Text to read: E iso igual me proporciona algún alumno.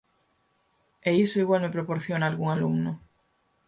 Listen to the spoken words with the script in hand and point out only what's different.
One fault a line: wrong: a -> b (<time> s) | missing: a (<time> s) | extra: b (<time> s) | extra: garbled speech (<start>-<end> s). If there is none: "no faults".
no faults